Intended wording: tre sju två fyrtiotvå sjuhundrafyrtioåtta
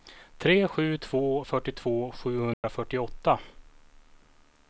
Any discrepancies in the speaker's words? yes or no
no